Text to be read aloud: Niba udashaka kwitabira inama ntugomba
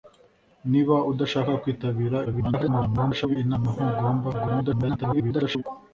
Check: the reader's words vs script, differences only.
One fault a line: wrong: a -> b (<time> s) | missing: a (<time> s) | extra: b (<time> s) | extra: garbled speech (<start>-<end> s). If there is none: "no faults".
extra: garbled speech (2.2-3.4 s)
extra: garbled speech (4.3-5.6 s)